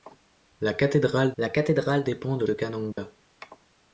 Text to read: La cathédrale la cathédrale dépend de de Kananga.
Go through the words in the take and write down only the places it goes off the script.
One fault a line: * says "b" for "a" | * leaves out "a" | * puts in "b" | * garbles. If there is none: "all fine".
all fine